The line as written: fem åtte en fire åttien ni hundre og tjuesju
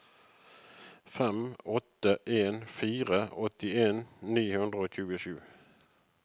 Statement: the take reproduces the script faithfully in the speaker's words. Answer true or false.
true